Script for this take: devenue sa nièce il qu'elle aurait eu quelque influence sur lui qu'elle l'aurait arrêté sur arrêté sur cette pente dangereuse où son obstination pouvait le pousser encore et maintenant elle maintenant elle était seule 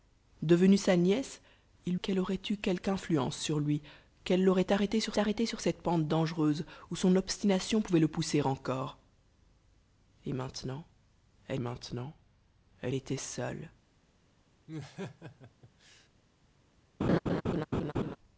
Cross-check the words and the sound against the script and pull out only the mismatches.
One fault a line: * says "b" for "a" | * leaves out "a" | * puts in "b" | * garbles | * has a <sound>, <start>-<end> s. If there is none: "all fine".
* has a laugh, 14.7-16.1 s
* has a laugh, 17.0-18.2 s